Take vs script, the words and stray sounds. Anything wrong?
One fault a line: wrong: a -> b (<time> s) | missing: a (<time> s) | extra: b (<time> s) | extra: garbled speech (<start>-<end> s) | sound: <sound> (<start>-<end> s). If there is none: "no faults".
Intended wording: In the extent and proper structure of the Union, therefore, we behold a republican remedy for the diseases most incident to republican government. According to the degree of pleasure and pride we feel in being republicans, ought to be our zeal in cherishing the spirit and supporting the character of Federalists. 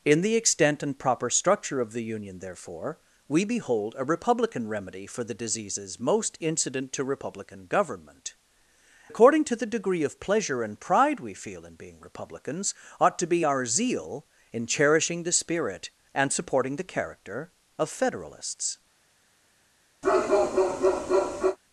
sound: bark (20.0-21.6 s)